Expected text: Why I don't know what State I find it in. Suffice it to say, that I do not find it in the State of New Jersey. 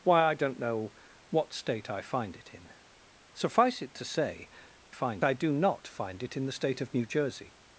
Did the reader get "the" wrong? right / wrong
right